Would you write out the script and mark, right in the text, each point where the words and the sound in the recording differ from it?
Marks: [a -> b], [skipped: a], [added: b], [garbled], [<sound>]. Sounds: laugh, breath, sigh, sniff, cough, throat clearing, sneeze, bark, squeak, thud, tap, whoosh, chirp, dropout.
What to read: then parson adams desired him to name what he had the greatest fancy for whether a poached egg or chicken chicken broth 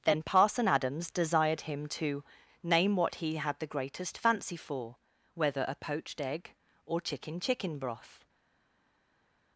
then parson adams desired him to name what he had the greatest fancy for whether a poached egg or chicken chicken broth